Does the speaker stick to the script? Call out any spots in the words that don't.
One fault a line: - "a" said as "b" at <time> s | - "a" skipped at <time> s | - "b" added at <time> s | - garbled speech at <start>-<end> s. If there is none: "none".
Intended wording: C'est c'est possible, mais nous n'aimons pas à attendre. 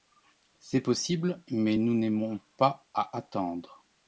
- "c'est" skipped at 0.8 s